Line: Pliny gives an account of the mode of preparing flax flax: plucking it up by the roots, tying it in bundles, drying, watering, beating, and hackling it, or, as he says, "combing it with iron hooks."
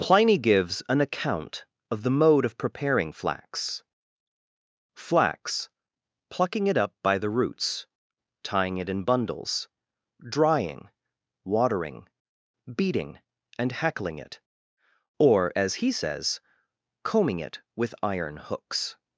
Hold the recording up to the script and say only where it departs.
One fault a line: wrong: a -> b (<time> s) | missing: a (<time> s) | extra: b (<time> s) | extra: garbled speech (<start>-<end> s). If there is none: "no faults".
no faults